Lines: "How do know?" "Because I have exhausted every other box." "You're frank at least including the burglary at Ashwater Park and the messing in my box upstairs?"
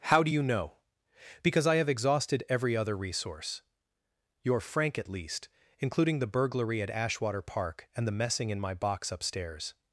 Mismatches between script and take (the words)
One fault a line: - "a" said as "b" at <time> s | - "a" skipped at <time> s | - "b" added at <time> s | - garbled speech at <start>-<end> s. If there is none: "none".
- "you" added at 0.3 s
- "box" said as "resource" at 2.9 s